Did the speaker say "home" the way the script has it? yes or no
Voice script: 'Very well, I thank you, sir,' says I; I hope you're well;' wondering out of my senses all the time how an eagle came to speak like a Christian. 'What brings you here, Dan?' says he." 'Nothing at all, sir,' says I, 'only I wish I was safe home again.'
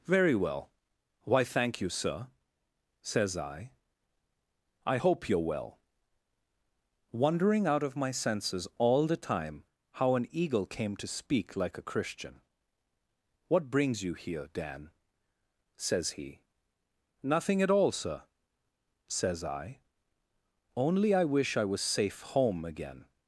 yes